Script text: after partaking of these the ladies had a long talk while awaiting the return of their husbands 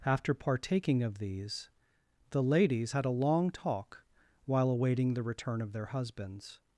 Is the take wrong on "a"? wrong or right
right